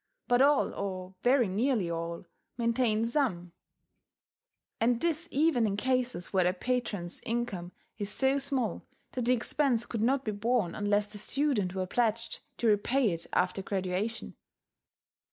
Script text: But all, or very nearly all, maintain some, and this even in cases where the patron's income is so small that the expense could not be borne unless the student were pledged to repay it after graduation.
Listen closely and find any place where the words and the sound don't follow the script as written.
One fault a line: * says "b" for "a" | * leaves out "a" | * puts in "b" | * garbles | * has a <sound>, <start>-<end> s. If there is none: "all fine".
all fine